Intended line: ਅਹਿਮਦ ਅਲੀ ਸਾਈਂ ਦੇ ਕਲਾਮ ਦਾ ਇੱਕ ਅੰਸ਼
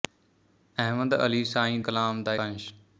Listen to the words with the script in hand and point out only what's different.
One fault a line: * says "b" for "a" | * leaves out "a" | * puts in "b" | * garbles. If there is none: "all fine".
* leaves out "ਦੇ"
* leaves out "ਇੱਕ"